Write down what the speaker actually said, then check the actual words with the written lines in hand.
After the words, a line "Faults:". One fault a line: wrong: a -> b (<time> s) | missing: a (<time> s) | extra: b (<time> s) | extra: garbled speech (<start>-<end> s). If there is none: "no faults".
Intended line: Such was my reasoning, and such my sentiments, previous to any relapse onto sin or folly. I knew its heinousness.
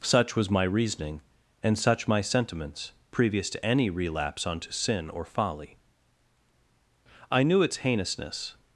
Such was my reasoning, and such my sentiments, previous to any relapse onto sin or folly. I knew its heinousness.
Faults:
no faults